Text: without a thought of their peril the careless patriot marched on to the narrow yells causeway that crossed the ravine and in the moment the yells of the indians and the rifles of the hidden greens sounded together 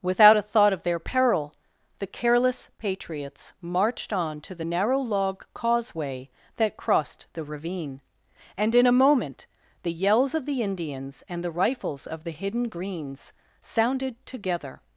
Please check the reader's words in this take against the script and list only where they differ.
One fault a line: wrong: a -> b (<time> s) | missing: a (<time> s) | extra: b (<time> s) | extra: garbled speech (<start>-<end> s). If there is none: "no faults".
wrong: patriot -> patriots (2.8 s)
wrong: yells -> log (5.0 s)
wrong: the -> a (8.9 s)